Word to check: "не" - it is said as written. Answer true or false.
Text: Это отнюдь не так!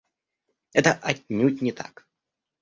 true